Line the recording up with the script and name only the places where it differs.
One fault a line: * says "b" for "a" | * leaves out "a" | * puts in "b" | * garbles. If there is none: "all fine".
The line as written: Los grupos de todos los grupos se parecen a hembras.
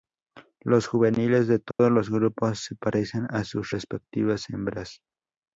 * says "juveniles" for "grupos"
* puts in "sus respectivas"